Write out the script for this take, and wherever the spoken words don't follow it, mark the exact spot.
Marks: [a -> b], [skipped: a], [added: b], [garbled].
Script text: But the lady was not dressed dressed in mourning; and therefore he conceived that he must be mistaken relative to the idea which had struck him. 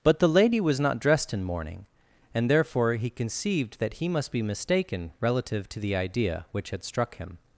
But the lady was not dressed [skipped: dressed] in mourning; and therefore he conceived that he must be mistaken relative to the idea which had struck him.